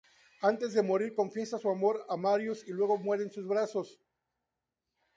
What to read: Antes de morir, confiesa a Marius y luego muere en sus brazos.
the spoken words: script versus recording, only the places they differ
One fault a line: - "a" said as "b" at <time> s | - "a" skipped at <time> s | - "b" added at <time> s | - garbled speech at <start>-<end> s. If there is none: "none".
- "su amor" added at 1.6 s